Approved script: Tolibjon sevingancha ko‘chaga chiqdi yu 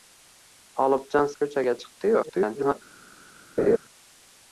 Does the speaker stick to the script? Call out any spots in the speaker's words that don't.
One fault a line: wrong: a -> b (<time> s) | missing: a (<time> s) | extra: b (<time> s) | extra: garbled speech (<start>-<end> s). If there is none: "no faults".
missing: sevingancha (1.3 s)
extra: garbled speech (2.2-2.7 s)